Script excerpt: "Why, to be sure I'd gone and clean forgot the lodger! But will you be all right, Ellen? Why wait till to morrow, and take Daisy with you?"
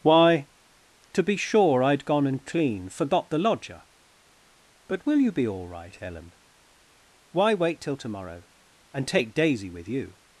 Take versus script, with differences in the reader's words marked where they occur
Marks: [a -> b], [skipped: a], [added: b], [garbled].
"Why, to be sure I'd gone and clean forgot the lodger! But will you be all right, Ellen? Why wait till to morrow, and take Daisy with you?"